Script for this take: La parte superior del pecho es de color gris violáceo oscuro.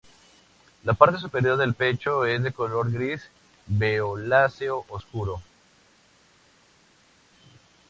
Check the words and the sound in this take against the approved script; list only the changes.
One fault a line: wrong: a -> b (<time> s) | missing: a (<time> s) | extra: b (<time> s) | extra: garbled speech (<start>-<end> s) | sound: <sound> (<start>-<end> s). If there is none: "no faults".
no faults